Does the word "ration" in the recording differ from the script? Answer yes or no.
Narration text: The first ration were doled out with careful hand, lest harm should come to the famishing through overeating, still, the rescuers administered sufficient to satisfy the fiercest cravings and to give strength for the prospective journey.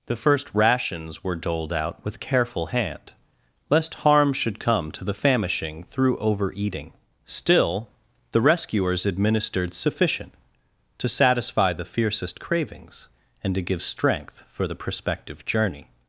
yes